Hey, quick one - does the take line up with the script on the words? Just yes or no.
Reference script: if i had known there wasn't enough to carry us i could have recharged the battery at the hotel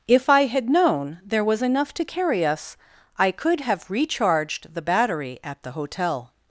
no